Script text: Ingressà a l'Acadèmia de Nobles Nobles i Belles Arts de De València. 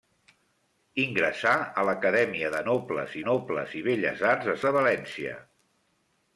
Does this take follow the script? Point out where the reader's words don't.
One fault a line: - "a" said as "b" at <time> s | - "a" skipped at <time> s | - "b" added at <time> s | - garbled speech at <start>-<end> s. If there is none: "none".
none